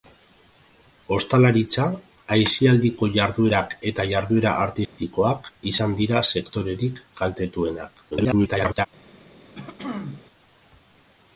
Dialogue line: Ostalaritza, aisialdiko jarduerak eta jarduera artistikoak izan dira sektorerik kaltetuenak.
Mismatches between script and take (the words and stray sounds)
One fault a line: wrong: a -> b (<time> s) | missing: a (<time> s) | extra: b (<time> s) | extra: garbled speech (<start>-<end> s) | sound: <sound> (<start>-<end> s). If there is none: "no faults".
sound: dropout (4.8-5.0 s)
extra: garbled speech (8.1-8.9 s)
sound: throat clearing (9.6-10.2 s)